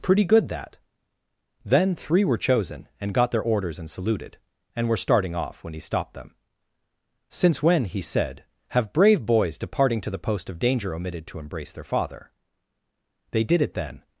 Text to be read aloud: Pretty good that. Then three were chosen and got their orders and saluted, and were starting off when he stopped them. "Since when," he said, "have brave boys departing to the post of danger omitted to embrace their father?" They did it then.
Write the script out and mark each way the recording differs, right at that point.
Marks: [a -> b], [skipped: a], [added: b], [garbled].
Pretty good that. Then three were chosen and got their orders and saluted, and were starting off when he stopped them. "Since when," he said, "have brave boys departing to the post of danger omitted to embrace their father?" They did it then.